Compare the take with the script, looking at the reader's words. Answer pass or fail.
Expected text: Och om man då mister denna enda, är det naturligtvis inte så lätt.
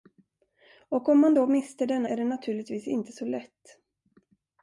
fail